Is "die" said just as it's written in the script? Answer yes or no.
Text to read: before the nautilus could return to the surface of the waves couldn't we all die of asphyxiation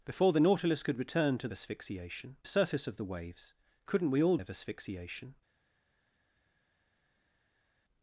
no